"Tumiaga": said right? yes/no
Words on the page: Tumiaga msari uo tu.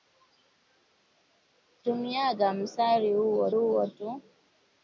yes